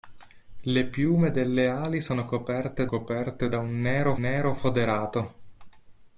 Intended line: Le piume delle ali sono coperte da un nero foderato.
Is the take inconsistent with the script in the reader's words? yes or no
yes